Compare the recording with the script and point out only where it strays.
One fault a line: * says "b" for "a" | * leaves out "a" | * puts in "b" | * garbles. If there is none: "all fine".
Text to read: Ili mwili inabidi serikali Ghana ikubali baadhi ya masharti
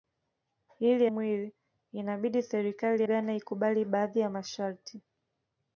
all fine